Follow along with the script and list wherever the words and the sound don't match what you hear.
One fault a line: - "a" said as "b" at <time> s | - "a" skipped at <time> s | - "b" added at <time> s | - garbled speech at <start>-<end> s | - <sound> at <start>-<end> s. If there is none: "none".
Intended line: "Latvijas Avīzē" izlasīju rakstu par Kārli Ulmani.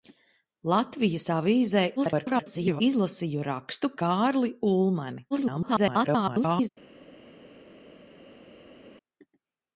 - garbled speech at 2.0-2.8 s
- "par" skipped at 3.9 s
- garbled speech at 5.3-6.7 s